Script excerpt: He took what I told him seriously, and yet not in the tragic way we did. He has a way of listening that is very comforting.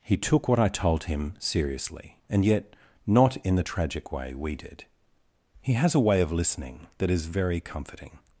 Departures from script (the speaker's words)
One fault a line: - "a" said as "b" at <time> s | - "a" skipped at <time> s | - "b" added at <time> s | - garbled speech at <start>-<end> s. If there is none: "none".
none